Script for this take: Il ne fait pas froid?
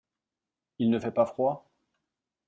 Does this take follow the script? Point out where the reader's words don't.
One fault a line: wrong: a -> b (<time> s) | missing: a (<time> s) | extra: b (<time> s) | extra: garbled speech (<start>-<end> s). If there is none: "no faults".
no faults